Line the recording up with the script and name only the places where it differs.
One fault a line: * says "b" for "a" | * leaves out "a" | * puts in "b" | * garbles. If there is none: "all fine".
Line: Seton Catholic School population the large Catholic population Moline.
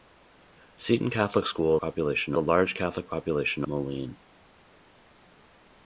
all fine